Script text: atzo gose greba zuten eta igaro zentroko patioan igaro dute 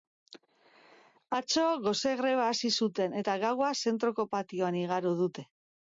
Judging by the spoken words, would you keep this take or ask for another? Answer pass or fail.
fail